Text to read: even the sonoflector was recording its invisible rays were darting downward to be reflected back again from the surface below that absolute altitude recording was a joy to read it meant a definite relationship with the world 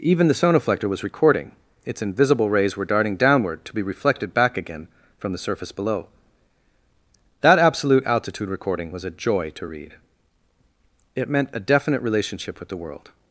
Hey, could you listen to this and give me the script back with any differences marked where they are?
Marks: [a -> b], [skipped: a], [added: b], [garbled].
even the sonoflector was recording its invisible rays were darting downward to be reflected back again from the surface below that absolute altitude recording was a joy to read it meant a definite relationship with the world